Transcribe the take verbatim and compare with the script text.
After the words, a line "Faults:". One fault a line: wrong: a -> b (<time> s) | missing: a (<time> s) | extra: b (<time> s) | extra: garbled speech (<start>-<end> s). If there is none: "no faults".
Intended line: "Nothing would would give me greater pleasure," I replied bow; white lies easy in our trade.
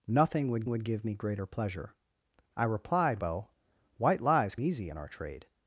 "Nothing would would give me greater pleasure," I replied bow; white lies easy in our trade.
Faults:
no faults